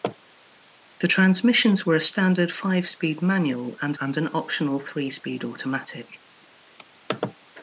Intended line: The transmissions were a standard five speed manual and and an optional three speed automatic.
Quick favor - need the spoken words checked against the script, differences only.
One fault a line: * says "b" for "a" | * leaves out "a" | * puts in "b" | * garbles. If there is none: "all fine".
all fine